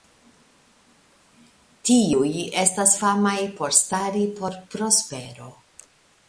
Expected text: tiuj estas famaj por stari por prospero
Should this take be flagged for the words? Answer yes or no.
no